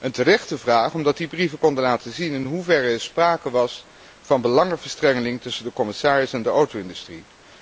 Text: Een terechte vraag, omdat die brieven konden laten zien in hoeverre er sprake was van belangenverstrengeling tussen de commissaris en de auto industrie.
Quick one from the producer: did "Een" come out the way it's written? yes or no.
yes